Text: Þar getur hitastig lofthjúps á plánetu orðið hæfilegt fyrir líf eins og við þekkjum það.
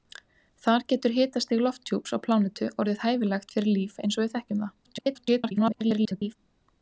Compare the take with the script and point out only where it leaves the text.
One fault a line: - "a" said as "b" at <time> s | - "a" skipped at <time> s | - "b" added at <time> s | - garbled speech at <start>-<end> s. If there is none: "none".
- garbled speech at 4.8-6.4 s